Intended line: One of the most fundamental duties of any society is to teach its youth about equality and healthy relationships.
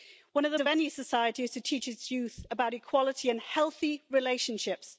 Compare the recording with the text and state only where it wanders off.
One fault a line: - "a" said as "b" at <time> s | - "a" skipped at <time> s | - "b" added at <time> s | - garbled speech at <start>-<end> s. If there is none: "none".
- "most fundamental duties" skipped at 0.6 s